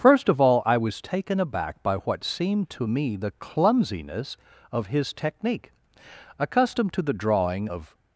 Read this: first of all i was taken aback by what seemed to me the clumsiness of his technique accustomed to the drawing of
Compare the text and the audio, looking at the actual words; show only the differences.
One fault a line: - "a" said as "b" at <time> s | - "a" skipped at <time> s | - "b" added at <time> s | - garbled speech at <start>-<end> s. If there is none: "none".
none